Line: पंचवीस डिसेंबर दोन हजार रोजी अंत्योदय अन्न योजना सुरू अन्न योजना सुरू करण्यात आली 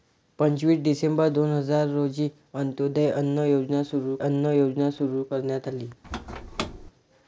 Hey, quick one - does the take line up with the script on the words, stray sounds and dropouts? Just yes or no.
no